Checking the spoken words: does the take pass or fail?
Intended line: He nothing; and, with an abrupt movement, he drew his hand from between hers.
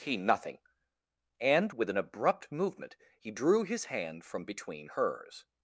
pass